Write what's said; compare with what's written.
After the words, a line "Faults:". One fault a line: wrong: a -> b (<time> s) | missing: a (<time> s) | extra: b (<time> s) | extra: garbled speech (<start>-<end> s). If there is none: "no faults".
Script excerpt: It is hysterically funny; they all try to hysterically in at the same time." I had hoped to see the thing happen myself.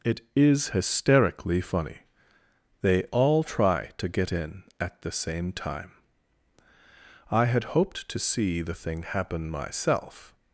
It is hysterically funny; they all try to get in at the same time." I had hoped to see the thing happen myself.
Faults:
wrong: hysterically -> get (4.1 s)